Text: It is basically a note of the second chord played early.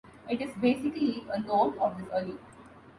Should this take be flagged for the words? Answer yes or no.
yes